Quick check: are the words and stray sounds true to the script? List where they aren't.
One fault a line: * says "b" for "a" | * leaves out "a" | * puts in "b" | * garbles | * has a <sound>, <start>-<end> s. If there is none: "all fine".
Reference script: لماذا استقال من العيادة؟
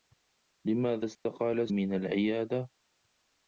* has a dropout, 1.1-1.3 s